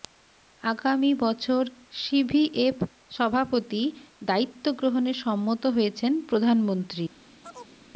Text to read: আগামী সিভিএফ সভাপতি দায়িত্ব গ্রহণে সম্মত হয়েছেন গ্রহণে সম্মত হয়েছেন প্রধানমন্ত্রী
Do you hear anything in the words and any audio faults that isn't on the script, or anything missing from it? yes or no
yes